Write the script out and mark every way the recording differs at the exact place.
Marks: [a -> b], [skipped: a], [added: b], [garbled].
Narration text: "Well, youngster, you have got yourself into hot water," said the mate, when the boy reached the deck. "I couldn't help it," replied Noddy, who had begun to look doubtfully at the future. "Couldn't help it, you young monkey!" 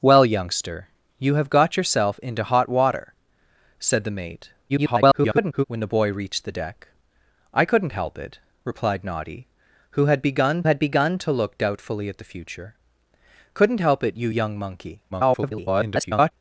"Well, youngster, you have got yourself into hot water," said the mate, [garbled] when the boy reached the deck. "I couldn't help it," replied Noddy, who had begun [added: had begun] to look doubtfully at the future. "Couldn't help it, you young monkey!" [garbled]